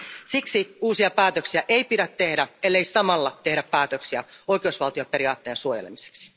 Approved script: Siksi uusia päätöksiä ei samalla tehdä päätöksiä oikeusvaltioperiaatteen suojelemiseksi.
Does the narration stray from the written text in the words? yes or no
yes